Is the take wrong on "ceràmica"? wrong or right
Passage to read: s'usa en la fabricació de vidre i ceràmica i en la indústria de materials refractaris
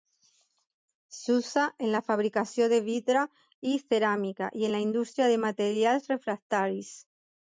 right